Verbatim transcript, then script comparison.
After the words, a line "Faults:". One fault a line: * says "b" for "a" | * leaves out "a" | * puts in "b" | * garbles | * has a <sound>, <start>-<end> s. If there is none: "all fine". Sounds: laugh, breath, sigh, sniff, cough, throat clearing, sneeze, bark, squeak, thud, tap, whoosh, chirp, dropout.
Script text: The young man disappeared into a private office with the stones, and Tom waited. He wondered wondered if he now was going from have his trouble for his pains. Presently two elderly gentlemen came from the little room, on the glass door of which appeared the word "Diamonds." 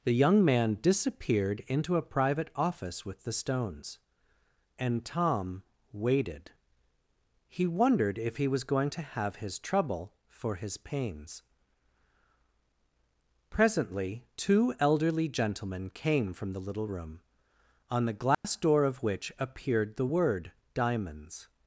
The young man disappeared into a private office with the stones, and Tom waited. He wondered if he was going to have his trouble for his pains. Presently two elderly gentlemen came from the little room, on the glass door of which appeared the word "Diamonds."
Faults:
* leaves out "wondered"
* leaves out "now"
* says "to" for "from"
* has a dropout, 18.3-18.4 s